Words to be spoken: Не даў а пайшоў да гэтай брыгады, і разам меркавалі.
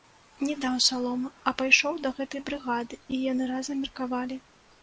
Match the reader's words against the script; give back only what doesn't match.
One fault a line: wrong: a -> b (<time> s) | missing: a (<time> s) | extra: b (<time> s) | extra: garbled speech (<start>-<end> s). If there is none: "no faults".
extra: саломы (0.8 s)
extra: яны (3.3 s)